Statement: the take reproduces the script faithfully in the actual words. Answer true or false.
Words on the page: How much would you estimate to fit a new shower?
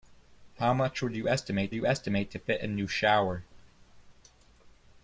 false